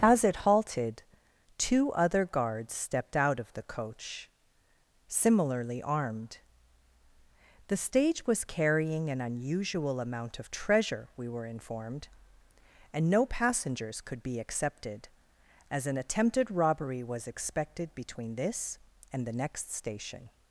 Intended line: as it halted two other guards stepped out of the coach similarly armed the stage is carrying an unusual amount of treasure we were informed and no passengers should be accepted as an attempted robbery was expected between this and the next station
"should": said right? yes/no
no